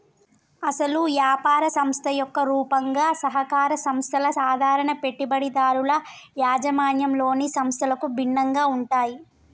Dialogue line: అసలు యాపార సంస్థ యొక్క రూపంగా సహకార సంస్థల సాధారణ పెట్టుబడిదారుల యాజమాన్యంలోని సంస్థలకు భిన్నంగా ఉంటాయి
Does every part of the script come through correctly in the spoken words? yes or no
yes